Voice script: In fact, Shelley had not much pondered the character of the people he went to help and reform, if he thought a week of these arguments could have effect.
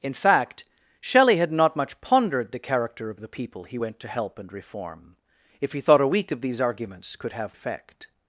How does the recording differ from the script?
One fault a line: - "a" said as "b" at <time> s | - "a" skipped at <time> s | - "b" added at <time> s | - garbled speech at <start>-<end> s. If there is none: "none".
none